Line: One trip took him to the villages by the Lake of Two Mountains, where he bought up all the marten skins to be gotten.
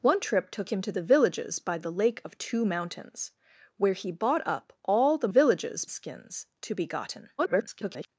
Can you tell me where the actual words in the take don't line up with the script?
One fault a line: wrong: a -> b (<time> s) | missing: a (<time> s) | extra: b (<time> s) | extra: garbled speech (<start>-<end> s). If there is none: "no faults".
wrong: marten -> villages (5.3 s)
extra: garbled speech (7.4-8.1 s)